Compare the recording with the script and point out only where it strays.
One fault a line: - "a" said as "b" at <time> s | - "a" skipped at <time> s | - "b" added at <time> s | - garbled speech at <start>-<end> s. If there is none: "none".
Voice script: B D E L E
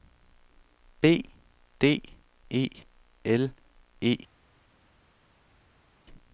none